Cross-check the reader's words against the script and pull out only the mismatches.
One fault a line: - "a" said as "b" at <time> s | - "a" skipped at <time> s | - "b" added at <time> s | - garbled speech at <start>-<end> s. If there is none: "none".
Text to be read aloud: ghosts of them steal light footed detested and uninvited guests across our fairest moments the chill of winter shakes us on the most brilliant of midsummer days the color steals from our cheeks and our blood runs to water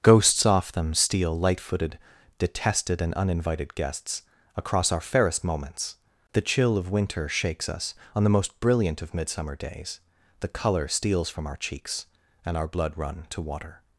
- "of" said as "off" at 0.5 s
- "runs" said as "run" at 13.0 s